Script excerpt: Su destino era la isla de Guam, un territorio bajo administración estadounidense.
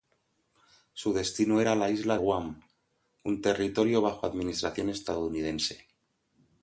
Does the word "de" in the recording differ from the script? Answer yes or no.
yes